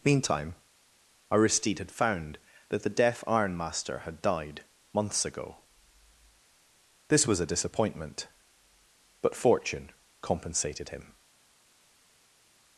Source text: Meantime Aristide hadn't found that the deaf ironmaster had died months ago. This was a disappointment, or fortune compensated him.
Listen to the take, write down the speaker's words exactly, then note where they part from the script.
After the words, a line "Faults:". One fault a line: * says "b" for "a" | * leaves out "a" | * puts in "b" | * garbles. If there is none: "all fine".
Meantime Aristide had found that the deaf ironmaster had died months ago. This was a disappointment, but fortune compensated him.
Faults:
* says "had" for "hadn't"
* says "but" for "or"